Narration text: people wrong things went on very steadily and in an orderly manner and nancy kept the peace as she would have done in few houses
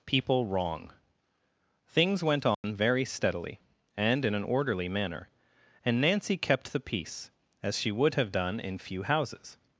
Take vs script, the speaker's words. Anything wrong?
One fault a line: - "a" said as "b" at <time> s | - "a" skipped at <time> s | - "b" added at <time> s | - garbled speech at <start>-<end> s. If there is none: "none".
none